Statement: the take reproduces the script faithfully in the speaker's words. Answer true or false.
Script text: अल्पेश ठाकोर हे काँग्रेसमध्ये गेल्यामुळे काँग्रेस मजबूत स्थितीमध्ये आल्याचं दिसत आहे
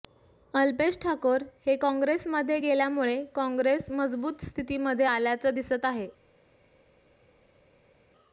true